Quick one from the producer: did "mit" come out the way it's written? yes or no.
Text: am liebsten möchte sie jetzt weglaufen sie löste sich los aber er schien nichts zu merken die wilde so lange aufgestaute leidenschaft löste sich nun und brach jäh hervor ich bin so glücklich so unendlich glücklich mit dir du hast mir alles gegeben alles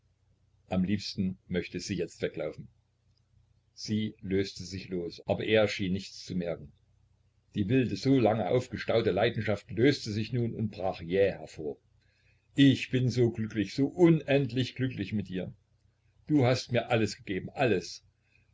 yes